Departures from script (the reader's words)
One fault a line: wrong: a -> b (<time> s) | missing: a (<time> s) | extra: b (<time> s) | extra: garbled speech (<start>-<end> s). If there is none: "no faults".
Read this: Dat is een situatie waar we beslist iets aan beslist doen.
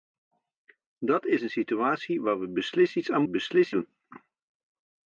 no faults